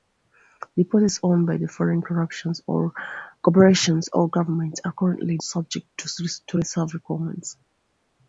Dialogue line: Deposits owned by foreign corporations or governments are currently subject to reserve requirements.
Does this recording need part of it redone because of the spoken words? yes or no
no